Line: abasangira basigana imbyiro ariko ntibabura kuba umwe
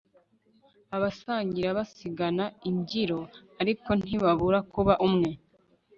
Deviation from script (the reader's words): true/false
false